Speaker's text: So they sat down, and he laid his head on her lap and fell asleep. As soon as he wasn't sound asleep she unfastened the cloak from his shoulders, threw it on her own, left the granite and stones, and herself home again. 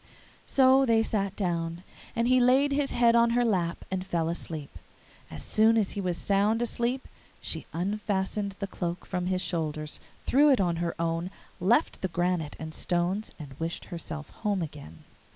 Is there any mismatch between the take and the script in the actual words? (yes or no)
yes